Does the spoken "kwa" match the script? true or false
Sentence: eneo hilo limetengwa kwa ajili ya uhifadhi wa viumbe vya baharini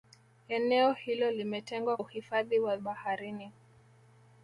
false